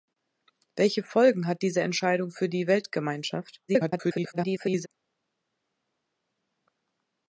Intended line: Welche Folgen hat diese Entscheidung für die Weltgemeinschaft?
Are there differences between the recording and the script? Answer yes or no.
yes